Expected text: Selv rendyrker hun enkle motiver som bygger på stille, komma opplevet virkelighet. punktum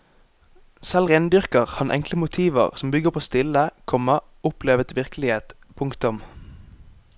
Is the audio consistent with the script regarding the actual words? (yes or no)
no